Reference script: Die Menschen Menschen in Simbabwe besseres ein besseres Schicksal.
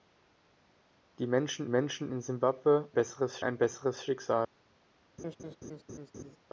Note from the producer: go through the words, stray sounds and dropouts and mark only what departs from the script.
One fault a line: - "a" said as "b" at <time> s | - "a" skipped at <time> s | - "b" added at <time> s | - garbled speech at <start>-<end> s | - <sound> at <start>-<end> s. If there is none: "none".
- laugh at 5.2-6.4 s